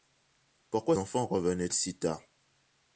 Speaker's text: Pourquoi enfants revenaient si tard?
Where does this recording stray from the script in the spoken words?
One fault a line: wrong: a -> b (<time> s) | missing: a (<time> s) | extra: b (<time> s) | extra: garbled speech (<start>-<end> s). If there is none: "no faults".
no faults